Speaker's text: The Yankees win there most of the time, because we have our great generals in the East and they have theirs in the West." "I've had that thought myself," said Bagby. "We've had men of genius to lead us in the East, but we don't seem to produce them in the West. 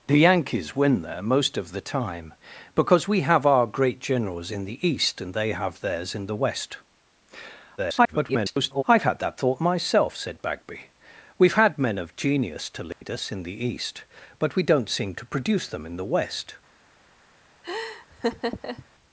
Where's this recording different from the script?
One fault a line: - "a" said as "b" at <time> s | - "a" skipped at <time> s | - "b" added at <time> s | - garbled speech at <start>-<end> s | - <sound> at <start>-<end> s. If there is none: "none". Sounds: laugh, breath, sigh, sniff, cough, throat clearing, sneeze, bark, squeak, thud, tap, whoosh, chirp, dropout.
- garbled speech at 7.8-8.8 s
- dropout at 12.9-13.0 s
- laugh at 17.6-18.9 s